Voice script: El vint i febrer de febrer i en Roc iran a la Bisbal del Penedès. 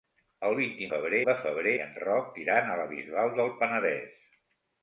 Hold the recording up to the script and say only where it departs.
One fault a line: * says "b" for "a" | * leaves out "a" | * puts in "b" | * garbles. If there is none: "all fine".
all fine